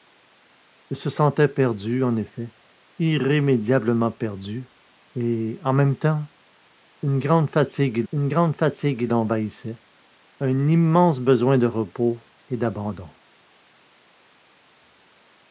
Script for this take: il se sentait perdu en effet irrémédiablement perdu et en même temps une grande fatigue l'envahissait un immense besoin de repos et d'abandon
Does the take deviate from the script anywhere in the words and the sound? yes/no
yes